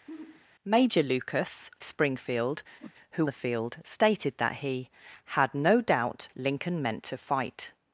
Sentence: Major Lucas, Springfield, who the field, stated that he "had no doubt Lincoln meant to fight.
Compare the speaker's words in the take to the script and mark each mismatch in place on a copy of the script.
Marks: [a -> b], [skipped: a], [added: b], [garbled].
Major Lucas, Springfield, who the field, stated that he "had no doubt Lincoln meant to fight.